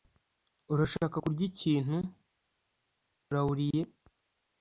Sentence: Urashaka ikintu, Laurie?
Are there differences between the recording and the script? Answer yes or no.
yes